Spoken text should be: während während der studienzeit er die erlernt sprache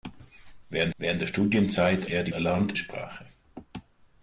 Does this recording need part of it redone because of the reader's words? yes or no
no